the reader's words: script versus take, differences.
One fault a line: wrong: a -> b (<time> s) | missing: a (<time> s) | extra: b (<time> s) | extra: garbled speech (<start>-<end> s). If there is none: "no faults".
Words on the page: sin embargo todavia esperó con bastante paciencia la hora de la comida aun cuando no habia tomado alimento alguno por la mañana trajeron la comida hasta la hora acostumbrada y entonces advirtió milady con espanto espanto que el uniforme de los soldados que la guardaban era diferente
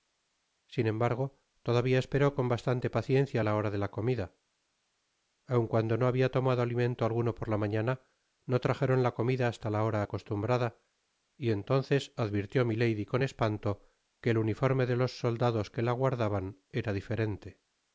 extra: no (8.4 s)
missing: espanto (13.8 s)